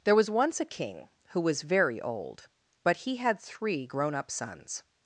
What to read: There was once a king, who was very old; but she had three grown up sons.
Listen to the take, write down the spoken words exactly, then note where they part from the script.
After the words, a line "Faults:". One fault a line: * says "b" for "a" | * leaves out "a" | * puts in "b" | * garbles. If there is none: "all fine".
There was once a king, who was very old; but he had three grown up sons.
Faults:
* says "he" for "she"